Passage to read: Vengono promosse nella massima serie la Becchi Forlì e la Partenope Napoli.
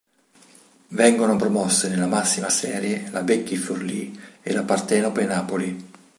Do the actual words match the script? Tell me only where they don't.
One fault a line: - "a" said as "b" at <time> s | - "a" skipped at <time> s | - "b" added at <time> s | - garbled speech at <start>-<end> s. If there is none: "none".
none